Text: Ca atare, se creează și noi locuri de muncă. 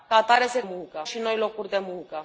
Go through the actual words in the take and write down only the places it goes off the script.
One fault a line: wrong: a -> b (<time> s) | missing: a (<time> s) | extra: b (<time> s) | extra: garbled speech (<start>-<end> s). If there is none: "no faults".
wrong: creează -> muncă (0.6 s)